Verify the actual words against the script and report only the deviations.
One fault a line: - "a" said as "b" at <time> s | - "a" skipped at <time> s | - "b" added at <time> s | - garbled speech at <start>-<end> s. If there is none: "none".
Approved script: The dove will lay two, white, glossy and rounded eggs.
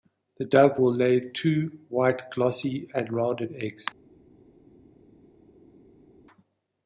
none